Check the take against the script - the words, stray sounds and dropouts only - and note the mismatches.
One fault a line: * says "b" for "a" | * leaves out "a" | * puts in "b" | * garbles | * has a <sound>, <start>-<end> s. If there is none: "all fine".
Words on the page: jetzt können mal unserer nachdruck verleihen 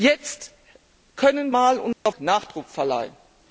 * has a dropout, 1.9-2.1 s